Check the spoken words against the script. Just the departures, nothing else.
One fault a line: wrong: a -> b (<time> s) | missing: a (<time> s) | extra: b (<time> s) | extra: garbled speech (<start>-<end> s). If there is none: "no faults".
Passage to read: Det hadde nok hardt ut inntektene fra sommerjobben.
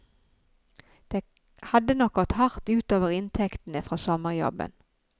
extra: gått (2.1 s)
extra: over (3.0 s)